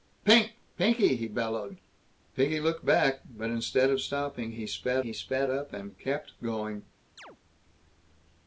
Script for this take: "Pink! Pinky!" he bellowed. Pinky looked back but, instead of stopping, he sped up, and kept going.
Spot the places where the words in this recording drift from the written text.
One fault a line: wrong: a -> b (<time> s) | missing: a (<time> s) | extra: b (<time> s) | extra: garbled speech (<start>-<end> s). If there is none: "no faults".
extra: he sped (5.0 s)